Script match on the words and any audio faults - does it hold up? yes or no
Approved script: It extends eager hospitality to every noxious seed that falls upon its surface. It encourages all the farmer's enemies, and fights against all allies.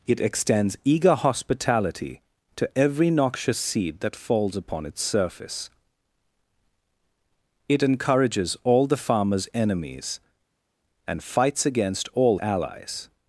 yes